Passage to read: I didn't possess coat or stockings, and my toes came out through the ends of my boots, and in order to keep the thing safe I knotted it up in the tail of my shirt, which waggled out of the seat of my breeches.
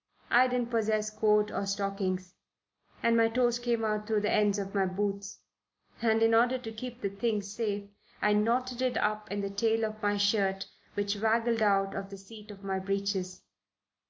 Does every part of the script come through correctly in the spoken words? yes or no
yes